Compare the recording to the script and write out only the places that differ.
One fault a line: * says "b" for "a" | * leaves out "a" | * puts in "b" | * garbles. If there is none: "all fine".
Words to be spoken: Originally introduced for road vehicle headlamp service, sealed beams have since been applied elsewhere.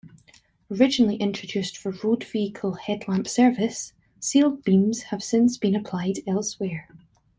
all fine